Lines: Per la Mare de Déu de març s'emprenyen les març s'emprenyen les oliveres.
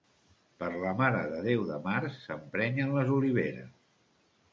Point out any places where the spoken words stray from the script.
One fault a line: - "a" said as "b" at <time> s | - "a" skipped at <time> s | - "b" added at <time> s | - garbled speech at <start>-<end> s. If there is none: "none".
- "març s'emprenyen les" skipped at 3.1 s